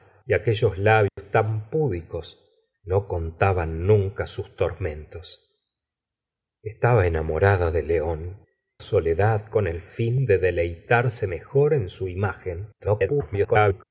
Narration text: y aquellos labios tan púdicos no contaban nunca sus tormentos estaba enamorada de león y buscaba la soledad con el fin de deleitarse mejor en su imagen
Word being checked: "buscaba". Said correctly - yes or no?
no